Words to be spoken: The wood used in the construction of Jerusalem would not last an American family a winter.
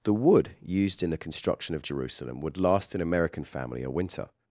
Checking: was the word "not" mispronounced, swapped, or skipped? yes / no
yes